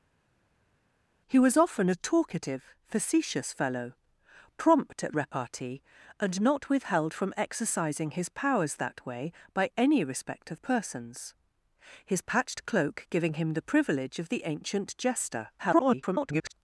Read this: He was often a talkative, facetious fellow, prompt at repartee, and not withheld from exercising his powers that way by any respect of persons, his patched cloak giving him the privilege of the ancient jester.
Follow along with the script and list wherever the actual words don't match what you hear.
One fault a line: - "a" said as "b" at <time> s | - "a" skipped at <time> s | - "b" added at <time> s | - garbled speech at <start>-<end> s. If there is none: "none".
- garbled speech at 15.6-16.5 s